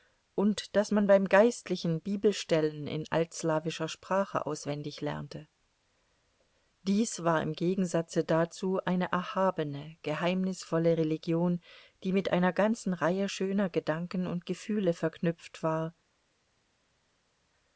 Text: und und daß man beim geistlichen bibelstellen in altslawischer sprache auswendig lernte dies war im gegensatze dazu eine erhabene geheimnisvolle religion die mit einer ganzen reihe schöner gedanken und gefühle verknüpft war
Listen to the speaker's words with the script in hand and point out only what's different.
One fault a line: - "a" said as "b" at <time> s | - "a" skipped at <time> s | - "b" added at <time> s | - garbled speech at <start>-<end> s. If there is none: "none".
- "und" skipped at 0.8 s